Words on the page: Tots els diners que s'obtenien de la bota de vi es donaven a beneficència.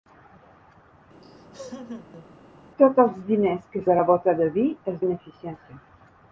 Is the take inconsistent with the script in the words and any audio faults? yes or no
yes